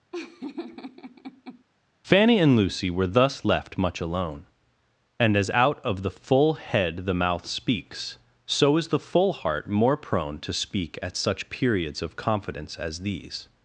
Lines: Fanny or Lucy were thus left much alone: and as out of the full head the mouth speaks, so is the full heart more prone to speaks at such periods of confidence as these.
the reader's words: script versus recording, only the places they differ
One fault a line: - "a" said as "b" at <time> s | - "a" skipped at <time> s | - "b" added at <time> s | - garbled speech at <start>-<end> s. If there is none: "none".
- "or" said as "and" at 2.4 s
- "speaks" said as "speak" at 10.5 s